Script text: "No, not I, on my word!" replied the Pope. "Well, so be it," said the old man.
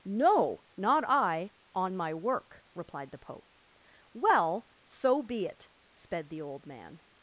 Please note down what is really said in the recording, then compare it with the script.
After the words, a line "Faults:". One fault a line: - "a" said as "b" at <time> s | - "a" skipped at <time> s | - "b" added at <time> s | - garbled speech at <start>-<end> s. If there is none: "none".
"No, not I, on my work!" replied the Pope. "Well, so be it," sped the old man.
Faults:
- "word" said as "work" at 2.1 s
- "said" said as "sped" at 5.9 s